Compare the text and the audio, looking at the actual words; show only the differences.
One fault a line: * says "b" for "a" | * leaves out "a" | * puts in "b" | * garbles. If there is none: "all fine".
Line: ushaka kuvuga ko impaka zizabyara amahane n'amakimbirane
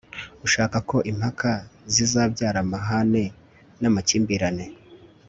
* leaves out "kuvuga"